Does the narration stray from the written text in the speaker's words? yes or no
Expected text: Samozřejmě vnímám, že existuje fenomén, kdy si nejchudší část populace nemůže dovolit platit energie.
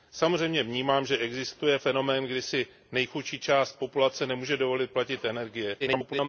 yes